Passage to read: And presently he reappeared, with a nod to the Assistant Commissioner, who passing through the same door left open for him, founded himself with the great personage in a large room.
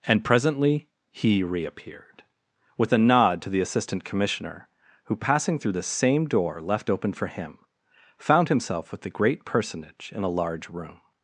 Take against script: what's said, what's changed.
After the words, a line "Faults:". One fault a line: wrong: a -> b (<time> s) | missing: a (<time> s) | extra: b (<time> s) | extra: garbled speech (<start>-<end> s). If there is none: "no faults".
And presently he reappeared, with a nod to the Assistant Commissioner, who passing through the same door left open for him, found himself with the great personage in a large room.
Faults:
wrong: founded -> found (8.2 s)